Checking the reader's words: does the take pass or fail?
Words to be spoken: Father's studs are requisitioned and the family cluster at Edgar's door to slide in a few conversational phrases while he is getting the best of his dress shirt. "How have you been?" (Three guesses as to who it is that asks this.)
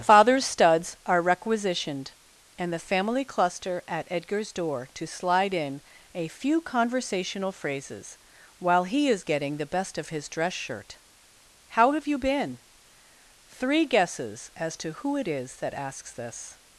pass